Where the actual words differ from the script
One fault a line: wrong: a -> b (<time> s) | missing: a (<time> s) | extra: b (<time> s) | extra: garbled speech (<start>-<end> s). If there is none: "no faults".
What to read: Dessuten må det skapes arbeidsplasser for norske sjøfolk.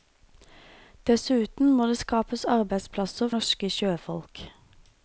missing: for (3.3 s)